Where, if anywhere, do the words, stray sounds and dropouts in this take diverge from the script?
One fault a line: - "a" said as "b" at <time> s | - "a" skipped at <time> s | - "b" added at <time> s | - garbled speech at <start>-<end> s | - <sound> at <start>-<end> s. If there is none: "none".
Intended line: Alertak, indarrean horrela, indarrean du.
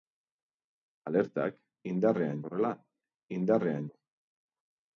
none